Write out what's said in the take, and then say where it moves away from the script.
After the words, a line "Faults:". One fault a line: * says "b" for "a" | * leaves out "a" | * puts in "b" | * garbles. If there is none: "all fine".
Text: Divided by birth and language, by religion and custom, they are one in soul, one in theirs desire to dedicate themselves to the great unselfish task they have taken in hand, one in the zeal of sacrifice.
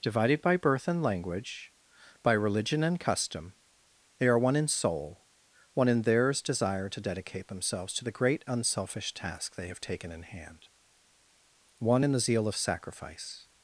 Divided by birth and language, by religion and custom, they are one in soul, one in theirs desire to dedicate themselves to the great unselfish task they have taken in hand, one in the zeal of sacrifice.
Faults:
all fine